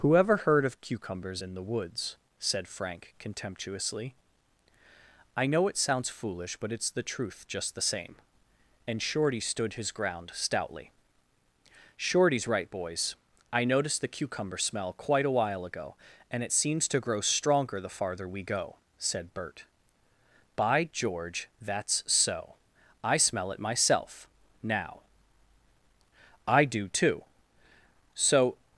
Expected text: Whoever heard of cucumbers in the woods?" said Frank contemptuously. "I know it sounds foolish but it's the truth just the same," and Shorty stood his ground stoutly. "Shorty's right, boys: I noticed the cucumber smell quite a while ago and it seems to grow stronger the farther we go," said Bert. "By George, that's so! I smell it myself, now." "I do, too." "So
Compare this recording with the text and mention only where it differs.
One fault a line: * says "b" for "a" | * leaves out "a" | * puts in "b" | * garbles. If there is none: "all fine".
all fine